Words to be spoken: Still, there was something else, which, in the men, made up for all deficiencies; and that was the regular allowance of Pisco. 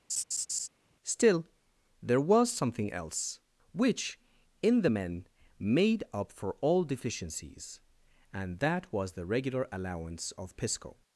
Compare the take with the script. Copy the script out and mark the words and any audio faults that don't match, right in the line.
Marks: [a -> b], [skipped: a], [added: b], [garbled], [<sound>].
[laugh] Still, there was something else, which, in the men, made up for all deficiencies; and that was the regular allowance of Pisco.